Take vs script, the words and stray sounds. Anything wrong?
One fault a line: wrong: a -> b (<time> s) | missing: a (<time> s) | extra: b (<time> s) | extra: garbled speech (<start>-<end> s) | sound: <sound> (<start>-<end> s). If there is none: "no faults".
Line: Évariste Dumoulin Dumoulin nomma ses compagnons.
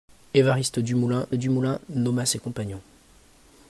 no faults